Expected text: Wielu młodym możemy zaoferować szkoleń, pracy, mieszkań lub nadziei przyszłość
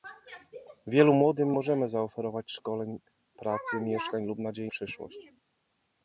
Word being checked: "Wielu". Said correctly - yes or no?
yes